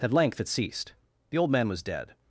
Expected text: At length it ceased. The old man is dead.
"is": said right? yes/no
no